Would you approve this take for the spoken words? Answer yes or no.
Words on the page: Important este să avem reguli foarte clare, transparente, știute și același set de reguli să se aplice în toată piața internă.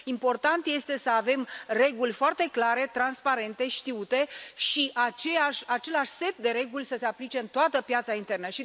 yes